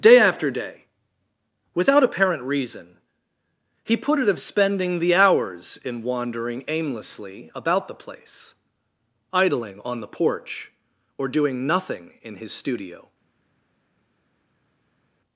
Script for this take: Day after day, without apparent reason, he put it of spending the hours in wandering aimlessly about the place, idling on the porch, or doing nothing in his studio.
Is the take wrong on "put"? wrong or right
right